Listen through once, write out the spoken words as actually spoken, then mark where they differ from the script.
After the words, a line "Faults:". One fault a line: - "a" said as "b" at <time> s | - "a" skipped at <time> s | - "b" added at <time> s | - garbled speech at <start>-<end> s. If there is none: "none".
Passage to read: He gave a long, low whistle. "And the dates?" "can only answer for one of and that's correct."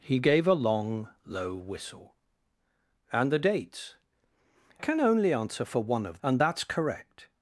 He gave a long, low whistle. "And the dates?" "can only answer for one of and that's correct."
Faults:
none